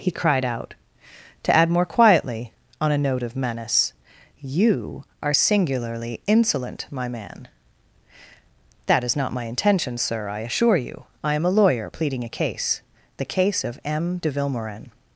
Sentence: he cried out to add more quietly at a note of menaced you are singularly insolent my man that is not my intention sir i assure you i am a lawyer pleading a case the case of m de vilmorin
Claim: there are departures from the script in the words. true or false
true